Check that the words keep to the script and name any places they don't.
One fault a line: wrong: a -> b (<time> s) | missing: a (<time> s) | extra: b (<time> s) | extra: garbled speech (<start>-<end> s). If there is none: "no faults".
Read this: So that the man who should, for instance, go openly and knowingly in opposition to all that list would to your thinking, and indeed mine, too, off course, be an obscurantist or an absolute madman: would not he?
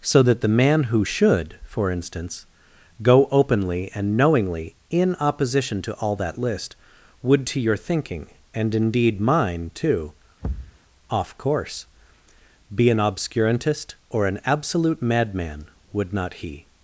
no faults